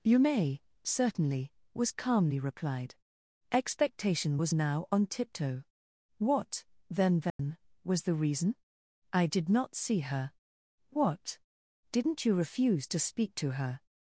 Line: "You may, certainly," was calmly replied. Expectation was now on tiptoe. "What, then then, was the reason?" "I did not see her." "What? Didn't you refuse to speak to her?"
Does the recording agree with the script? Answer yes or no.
yes